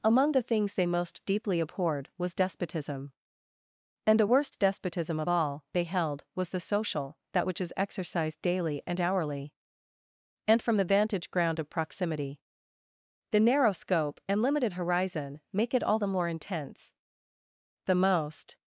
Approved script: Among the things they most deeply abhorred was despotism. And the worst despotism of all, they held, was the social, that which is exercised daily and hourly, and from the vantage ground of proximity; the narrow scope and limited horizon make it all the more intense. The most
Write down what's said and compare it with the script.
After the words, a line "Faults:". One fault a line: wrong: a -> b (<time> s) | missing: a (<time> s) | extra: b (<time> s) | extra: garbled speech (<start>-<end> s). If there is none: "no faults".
Among the things they most deeply abhorred was despotism. And the worst despotism of all, they held, was the social, that which is exercised daily and hourly, and from the vantage ground of proximity; the narrow scope and limited horizon make it all the more intense. The most
Faults:
no faults